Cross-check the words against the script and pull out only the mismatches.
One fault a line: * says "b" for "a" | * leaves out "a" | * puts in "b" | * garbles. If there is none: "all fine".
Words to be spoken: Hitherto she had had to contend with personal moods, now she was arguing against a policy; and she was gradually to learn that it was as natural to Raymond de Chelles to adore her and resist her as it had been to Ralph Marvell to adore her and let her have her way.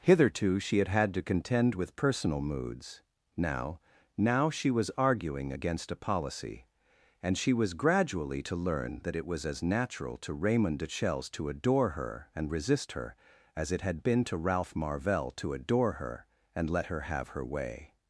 * puts in "now"